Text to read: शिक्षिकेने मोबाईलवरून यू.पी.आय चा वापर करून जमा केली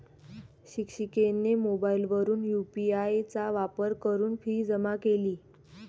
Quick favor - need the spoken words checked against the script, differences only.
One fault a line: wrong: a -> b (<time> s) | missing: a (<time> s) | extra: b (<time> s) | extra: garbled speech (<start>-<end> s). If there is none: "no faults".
extra: फी (4.4 s)